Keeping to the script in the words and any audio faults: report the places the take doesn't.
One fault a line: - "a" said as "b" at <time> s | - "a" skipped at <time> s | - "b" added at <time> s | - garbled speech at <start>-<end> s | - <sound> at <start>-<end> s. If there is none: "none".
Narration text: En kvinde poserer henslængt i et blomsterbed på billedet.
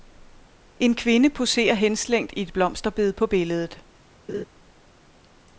- laugh at 4.3-4.5 s